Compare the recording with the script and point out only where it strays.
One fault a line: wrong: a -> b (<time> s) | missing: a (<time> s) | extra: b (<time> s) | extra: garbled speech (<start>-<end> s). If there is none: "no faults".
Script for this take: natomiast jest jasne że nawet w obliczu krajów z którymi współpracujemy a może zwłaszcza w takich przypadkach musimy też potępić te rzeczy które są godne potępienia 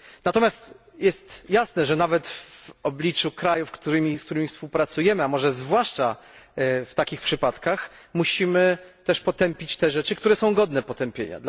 no faults